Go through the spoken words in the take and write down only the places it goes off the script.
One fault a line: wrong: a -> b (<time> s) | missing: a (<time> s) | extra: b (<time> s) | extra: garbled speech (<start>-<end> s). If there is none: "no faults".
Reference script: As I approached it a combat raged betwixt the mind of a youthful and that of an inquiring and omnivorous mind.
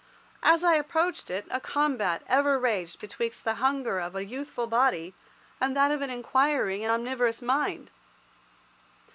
extra: ever (2.2 s)
wrong: mind -> hunger (3.6 s)
extra: body (4.7 s)